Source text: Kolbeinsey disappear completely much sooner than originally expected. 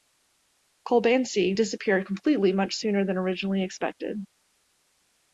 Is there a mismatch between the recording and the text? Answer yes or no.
no